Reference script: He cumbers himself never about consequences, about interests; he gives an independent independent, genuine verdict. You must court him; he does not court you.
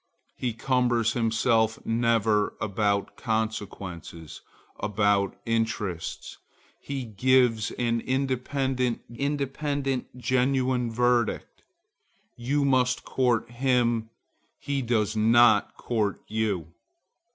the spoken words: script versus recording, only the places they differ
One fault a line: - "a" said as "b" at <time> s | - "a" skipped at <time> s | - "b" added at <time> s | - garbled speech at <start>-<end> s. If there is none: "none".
none